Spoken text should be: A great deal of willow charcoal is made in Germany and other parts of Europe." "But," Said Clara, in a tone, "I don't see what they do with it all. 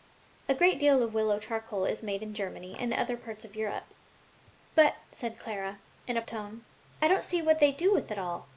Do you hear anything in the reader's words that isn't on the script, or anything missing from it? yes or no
no